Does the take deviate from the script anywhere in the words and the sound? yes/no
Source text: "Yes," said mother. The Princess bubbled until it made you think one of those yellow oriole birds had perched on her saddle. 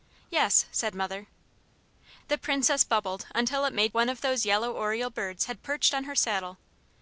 yes